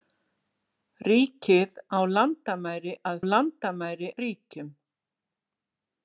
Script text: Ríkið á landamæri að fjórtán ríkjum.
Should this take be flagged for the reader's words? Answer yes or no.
yes